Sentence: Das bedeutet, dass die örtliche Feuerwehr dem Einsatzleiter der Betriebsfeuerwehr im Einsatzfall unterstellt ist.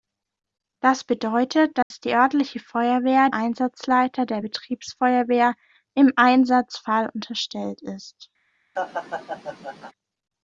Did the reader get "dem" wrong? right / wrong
wrong